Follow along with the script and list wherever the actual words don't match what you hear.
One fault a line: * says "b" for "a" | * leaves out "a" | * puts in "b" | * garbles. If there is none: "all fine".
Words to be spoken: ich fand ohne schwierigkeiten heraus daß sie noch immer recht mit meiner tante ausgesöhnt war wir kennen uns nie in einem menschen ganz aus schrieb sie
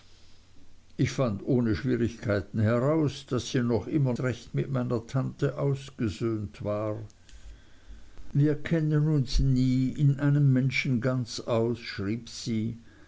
all fine